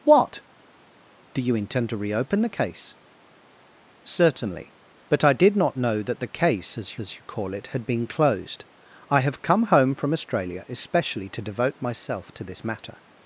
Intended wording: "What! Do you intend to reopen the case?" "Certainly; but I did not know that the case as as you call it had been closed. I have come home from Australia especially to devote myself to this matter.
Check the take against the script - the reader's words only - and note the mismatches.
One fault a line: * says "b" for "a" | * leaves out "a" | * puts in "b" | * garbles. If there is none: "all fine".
all fine